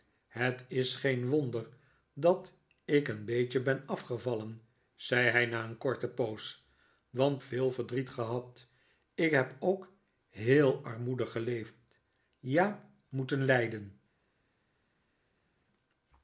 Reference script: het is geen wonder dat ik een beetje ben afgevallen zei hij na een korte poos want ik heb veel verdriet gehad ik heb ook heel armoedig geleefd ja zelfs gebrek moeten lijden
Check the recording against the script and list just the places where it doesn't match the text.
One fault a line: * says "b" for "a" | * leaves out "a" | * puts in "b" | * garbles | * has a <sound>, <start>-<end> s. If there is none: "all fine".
* leaves out "ik heb"
* leaves out "zelfs gebrek"